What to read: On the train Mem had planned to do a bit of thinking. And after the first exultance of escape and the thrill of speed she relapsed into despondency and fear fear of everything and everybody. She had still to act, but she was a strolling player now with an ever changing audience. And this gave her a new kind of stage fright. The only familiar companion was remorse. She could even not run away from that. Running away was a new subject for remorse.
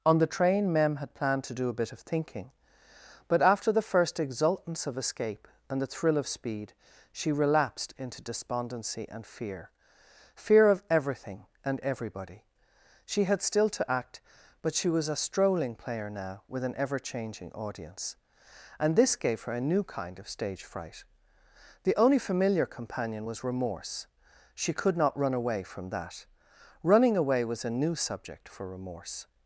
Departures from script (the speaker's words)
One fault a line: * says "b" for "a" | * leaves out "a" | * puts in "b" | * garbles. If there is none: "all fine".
* says "But" for "And"
* leaves out "even"